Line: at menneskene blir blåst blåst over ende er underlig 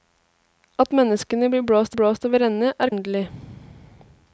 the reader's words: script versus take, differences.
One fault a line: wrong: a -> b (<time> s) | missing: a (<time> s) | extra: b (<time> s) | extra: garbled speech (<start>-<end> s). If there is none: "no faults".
no faults